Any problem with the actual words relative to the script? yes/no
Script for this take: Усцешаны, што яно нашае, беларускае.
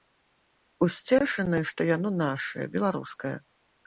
no